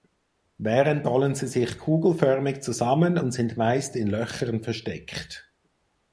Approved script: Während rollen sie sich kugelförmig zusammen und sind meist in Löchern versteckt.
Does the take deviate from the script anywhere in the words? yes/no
no